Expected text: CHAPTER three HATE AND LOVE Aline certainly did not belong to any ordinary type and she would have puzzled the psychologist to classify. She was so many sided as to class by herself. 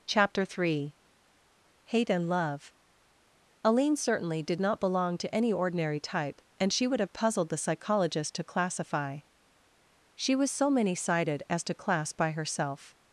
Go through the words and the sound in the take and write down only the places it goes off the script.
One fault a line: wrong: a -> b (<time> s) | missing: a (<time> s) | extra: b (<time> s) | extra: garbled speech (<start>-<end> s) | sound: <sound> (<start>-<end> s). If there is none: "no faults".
no faults